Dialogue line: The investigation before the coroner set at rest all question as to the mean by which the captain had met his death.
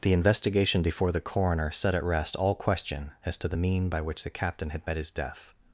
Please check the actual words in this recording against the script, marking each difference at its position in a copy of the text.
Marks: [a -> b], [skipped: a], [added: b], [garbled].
The investigation before the coroner set at rest all question as to the mean by which the captain had met his death.